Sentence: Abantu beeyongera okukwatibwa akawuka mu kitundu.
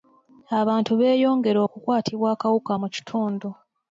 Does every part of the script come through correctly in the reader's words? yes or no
yes